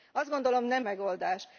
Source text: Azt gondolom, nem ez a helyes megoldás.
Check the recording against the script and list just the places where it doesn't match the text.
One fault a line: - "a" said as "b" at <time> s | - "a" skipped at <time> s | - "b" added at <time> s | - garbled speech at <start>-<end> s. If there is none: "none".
- "ez a helyes" skipped at 0.8 s